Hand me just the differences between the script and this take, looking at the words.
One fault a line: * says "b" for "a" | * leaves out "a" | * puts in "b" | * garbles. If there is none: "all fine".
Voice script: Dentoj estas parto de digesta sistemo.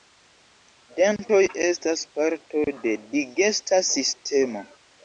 all fine